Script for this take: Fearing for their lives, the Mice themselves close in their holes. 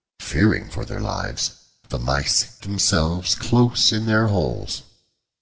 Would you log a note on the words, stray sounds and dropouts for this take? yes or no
no